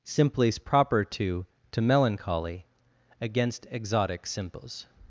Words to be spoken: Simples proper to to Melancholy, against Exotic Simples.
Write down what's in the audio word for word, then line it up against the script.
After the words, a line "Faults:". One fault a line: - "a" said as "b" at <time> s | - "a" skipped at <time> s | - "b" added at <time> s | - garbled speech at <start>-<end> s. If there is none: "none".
Simples proper to to Melancholy, against Exotic Simples.
Faults:
none